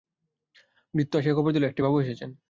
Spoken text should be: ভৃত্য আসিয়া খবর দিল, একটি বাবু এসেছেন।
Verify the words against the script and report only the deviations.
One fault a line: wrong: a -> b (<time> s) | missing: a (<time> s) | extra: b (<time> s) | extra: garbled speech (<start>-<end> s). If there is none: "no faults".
no faults